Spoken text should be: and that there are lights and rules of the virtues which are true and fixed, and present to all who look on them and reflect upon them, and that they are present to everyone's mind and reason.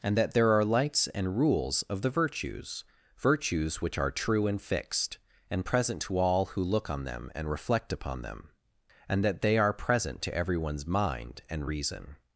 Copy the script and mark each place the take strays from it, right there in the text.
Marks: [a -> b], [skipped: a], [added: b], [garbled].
and that there are lights and rules of the virtues [added: virtues] which are true and fixed, and present to all who look on them and reflect upon them, and that they are present to everyone's mind and reason.